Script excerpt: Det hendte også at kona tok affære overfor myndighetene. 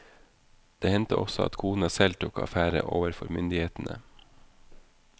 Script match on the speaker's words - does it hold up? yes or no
no